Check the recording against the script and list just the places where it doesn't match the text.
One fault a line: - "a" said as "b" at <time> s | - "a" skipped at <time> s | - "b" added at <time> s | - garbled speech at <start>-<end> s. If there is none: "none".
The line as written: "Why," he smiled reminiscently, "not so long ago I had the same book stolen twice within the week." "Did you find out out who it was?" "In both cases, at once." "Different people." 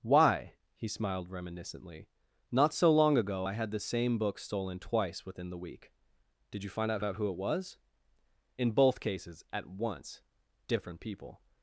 none